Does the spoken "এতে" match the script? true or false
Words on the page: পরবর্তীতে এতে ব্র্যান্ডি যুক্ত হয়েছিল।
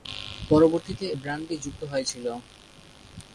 false